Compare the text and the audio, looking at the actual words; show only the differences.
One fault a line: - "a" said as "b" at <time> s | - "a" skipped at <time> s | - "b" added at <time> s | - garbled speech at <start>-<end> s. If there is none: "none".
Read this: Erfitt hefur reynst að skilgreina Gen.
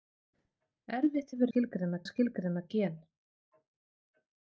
- "reynst" said as "skilgreina" at 1.5 s